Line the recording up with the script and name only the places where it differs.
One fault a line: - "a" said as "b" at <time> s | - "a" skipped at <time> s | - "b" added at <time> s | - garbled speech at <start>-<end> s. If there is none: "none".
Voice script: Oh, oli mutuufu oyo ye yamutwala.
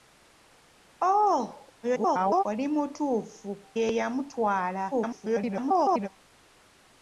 - garbled speech at 1.8-2.4 s
- "oyo" skipped at 3.5 s
- garbled speech at 4.9-6.1 s